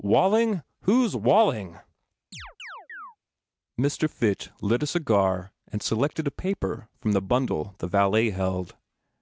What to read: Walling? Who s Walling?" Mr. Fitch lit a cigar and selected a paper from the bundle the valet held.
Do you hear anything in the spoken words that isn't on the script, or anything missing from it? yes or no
no